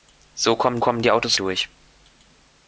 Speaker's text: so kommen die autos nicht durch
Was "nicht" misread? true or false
true